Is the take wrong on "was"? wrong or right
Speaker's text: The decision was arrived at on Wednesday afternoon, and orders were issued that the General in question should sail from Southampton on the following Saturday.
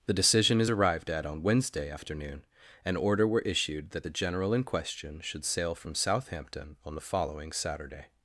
wrong